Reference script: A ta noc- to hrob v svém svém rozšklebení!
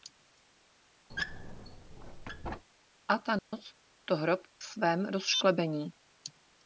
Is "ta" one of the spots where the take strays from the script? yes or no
no